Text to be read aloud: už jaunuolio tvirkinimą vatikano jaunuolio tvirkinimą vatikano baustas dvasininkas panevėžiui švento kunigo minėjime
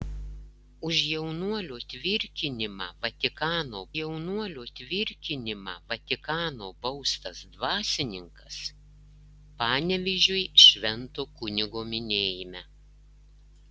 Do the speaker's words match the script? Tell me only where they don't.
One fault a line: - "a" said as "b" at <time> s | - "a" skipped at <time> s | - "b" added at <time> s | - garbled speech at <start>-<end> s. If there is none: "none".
none